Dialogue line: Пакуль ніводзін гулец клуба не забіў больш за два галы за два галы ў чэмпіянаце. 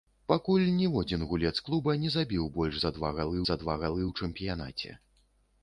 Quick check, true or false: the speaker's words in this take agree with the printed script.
true